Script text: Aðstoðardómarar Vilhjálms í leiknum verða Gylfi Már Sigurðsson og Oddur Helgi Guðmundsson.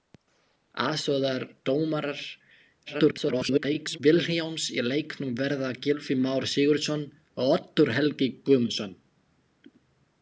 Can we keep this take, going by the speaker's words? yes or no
no